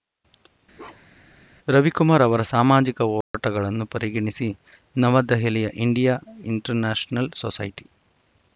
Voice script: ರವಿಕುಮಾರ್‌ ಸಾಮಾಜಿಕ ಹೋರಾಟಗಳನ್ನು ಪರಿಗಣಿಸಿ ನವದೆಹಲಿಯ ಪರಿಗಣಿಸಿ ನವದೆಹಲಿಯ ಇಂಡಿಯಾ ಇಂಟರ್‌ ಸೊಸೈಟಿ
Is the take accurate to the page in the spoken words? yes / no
no